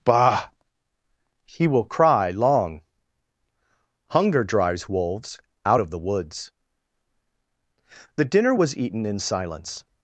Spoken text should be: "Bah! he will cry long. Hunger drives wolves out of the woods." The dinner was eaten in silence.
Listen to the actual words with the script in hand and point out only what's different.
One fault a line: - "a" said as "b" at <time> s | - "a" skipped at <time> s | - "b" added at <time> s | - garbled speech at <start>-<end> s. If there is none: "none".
none